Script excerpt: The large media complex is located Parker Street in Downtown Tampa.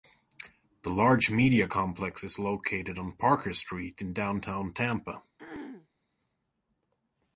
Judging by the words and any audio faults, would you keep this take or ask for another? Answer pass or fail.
fail